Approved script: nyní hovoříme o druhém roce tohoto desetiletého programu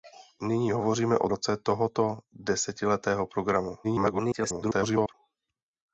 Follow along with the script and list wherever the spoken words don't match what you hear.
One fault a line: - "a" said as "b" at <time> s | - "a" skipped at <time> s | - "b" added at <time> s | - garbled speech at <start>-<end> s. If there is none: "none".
- "druhém" skipped at 1.3 s
- garbled speech at 3.8-5.1 s